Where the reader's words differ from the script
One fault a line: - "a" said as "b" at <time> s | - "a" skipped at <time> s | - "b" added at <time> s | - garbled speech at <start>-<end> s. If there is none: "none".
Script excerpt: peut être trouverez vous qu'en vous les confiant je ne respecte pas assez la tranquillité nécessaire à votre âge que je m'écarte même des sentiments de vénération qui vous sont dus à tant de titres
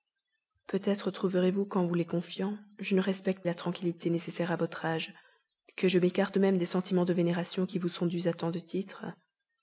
- "pas assez" skipped at 3.5 s